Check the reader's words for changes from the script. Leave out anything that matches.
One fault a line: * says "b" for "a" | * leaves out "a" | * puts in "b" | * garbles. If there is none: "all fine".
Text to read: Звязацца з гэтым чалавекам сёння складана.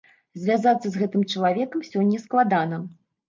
all fine